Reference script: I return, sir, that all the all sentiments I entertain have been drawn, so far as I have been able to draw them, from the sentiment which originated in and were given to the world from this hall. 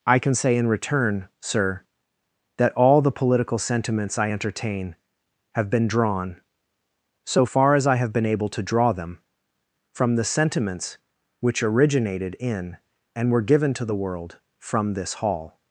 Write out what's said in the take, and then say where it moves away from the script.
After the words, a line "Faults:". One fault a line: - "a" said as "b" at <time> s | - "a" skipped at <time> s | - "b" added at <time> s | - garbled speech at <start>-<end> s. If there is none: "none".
I can say in return, sir, that all the political sentiments I entertain have been drawn, so far as I have been able to draw them, from the sentiments which originated in and were given to the world from this hall.
Faults:
- "can say in" added at 0.2 s
- "all" said as "political" at 3.1 s
- "sentiment" said as "sentiments" at 10.2 s